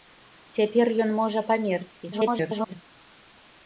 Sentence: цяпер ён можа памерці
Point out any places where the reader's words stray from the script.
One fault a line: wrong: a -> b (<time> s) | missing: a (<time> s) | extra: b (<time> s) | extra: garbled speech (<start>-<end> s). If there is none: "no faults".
extra: garbled speech (2.1-2.8 s)